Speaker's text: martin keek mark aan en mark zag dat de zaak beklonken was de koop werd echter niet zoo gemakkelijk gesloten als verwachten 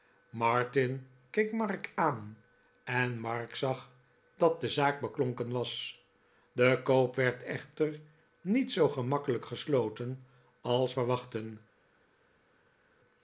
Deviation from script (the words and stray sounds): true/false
false